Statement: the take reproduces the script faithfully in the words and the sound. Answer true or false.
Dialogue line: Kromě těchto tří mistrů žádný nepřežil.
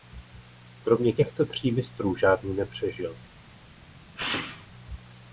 false